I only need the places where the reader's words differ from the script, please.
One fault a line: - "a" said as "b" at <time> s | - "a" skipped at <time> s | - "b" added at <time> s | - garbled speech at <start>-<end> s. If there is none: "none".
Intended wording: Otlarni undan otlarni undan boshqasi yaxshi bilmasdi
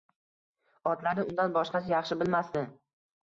- "otlarni undan" skipped at 1.5 s